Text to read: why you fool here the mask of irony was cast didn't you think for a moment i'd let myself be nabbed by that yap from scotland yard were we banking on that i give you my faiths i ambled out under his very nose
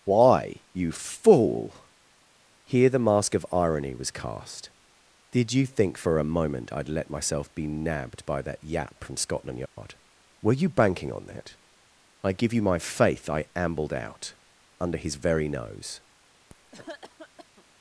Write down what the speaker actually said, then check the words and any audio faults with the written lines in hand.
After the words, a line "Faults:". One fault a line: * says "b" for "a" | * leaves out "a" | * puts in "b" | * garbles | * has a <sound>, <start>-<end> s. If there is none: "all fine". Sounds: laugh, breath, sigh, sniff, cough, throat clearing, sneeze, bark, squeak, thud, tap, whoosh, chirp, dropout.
why you fool here the mask of irony was cast did you think for a moment i'd let myself be nabbed by that yap from scotland yard were you banking on that i give you my faith i ambled out under his very nose
Faults:
* says "did" for "didn't"
* has a dropout, 9.7-9.8 s
* says "you" for "we"
* says "faith" for "faiths"
* has a cough, 16.5-17.6 s